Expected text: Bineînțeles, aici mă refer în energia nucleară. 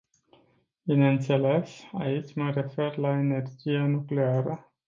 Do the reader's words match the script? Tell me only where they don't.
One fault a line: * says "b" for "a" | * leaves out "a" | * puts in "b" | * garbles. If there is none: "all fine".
* says "la" for "în"